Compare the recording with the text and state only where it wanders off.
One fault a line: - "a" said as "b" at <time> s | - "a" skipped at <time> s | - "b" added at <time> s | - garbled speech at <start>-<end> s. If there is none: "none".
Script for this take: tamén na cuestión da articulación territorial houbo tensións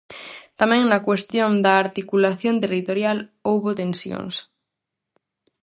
none